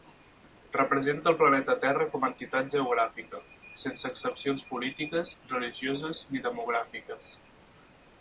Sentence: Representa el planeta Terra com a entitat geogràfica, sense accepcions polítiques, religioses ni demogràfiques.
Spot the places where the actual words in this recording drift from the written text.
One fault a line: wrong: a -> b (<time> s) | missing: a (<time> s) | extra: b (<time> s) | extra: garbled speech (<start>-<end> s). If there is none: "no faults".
no faults